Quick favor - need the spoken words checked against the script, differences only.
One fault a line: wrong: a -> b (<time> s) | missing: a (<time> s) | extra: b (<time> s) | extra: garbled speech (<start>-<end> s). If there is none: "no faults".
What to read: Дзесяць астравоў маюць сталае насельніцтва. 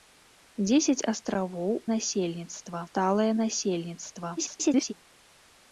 wrong: маюць -> насельніцтва (1.9 s)
extra: garbled speech (4.4-4.9 s)